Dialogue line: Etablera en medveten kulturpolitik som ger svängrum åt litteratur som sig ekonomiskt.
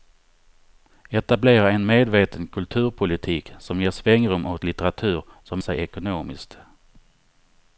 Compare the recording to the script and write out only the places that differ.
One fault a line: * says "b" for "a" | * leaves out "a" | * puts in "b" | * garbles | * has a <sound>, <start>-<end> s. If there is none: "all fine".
all fine